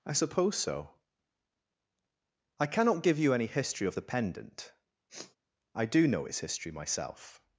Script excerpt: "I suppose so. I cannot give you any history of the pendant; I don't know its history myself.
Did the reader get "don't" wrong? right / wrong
wrong